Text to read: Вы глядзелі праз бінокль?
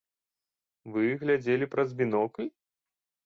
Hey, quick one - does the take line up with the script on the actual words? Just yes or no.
yes